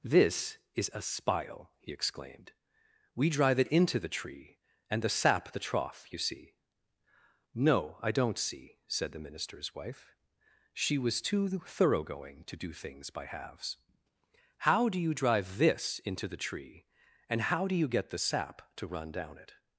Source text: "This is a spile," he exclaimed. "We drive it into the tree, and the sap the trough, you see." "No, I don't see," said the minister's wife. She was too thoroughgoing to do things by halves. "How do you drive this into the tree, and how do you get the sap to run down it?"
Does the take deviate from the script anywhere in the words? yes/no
no